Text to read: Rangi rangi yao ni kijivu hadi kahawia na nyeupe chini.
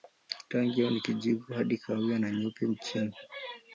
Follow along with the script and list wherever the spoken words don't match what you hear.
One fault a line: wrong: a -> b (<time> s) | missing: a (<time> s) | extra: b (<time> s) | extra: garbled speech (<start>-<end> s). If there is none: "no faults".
missing: rangi (0.8 s)